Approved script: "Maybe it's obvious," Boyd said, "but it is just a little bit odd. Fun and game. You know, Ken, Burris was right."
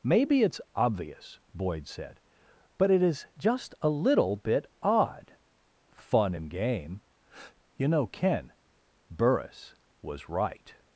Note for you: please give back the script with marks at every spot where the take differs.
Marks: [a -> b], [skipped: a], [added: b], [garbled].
"Maybe it's obvious," Boyd said, "but it is just a little bit odd. Fun and game. You know, Ken, Burris was right."